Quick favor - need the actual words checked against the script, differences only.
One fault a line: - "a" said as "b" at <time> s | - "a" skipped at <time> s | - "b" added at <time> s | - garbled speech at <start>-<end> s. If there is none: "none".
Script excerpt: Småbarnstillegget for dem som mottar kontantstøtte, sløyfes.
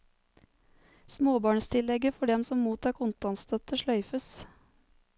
none